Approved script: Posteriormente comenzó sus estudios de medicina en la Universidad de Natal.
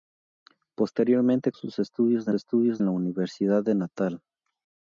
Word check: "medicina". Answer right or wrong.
wrong